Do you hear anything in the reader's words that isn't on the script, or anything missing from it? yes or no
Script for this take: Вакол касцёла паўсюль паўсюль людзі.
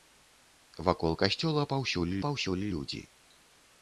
no